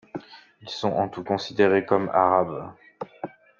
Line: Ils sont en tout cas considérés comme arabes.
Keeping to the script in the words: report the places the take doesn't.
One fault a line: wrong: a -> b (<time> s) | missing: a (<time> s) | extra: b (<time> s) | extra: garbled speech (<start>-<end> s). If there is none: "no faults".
missing: cas (1.2 s)